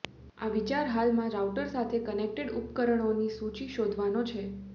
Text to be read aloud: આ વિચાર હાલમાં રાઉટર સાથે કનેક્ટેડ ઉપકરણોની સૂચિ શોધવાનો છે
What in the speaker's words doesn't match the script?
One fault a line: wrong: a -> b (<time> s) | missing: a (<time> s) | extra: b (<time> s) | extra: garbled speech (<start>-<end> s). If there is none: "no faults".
no faults